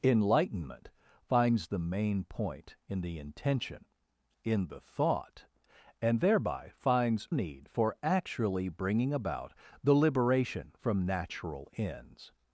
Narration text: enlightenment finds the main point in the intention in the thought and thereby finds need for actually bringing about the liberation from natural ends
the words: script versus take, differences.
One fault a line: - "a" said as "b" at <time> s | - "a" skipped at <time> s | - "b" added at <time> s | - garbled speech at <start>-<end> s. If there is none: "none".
none